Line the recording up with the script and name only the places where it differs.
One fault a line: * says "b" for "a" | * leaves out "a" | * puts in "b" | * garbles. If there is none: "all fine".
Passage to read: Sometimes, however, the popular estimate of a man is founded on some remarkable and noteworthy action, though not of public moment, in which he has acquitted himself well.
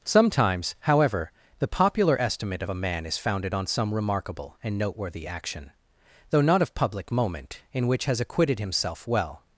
* leaves out "he"